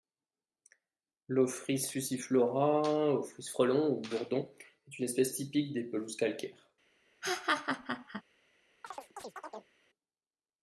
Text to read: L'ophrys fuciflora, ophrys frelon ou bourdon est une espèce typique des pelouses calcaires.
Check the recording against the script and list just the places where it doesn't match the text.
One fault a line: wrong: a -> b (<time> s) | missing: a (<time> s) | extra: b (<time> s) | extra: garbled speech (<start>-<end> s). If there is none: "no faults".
no faults